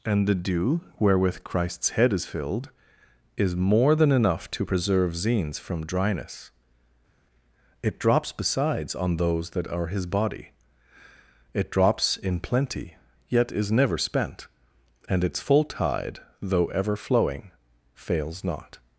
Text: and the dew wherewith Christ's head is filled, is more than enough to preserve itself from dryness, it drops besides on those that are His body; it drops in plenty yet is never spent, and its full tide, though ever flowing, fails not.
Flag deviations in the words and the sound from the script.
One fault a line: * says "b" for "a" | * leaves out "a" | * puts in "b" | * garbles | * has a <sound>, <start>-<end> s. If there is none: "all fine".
* says "zines" for "itself"